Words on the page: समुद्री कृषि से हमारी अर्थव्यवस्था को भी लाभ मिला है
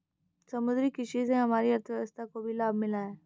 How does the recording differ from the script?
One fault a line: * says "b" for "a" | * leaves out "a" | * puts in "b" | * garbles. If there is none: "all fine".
all fine